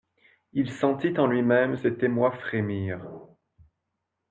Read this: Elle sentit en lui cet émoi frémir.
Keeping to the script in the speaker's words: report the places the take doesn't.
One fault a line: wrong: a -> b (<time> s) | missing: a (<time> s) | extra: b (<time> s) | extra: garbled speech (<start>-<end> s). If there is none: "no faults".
wrong: Elle -> Il (0.5 s)
extra: même (1.4 s)